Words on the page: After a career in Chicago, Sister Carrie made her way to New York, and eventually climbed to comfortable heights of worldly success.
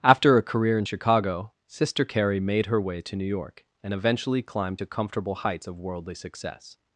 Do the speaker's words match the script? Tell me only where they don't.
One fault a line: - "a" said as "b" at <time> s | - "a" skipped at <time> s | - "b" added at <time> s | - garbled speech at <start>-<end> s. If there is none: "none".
none